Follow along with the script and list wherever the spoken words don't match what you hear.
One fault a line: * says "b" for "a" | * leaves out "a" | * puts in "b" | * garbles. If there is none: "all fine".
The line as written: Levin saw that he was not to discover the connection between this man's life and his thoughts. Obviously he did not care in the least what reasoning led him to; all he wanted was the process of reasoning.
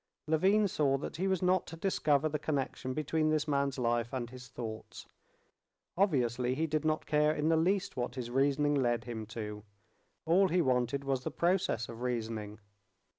* puts in "his"